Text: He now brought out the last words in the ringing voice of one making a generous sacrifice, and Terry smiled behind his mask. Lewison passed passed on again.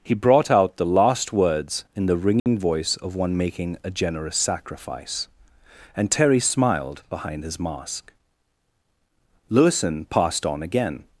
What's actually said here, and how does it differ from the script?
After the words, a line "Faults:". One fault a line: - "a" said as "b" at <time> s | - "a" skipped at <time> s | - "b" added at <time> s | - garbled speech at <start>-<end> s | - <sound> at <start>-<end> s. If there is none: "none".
He brought out the last words in the ringing voice of one making a generous sacrifice, and Terry smiled behind his mask. Lewison passed on again.
Faults:
- "now" skipped at 0.1 s
- dropout at 2.4-2.5 s
- "passed" skipped at 10.4 s